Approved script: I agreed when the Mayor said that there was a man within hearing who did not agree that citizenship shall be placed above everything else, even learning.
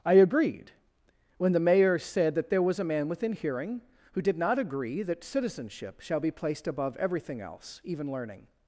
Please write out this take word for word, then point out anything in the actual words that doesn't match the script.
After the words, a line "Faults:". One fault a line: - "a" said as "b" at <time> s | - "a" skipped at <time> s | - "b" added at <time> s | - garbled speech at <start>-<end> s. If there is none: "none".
I agreed when the Mayor said that there was a man within hearing who did not agree that citizenship shall be placed above everything else, even learning.
Faults:
none